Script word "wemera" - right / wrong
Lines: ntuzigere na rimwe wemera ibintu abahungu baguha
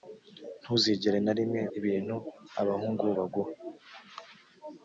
wrong